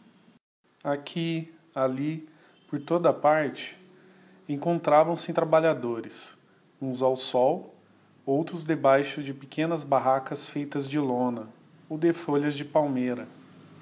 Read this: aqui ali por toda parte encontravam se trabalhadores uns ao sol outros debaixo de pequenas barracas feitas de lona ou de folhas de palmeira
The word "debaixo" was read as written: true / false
true